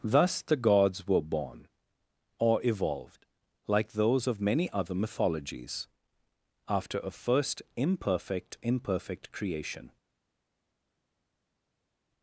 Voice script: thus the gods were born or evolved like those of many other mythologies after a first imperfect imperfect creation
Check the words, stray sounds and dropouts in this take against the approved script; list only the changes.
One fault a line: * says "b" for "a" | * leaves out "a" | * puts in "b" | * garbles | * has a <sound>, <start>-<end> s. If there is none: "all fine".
all fine